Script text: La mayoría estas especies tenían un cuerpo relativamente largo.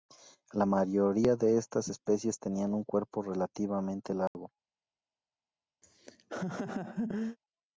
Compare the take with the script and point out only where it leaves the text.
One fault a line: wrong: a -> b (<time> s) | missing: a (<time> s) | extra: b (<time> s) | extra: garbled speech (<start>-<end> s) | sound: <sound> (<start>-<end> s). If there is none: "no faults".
extra: de (1.4 s)
sound: dropout (4.3-4.3 s)
sound: laugh (5.8-7.4 s)